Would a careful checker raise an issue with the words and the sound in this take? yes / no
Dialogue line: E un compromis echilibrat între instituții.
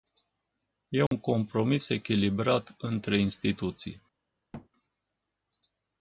yes